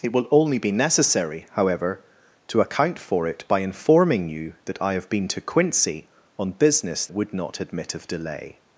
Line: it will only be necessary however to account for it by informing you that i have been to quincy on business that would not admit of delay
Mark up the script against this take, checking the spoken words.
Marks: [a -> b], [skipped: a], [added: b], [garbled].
it will only be necessary however to account for it by informing you that i have been to quincy on business [skipped: that] would not admit of delay